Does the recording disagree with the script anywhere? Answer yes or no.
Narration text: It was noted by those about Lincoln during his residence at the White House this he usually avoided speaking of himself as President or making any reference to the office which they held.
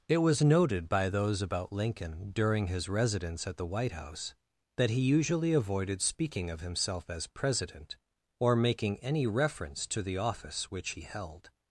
yes